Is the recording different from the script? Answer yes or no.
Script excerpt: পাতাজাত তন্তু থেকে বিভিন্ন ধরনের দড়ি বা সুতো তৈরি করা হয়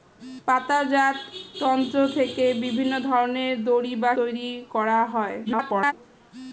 yes